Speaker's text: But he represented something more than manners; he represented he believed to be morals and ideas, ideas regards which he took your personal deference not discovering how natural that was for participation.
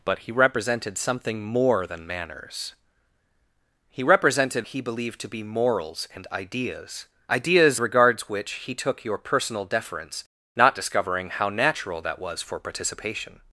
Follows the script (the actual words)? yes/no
yes